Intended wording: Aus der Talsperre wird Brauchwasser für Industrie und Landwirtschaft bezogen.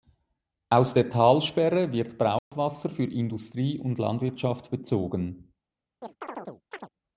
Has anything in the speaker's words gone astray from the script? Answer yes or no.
no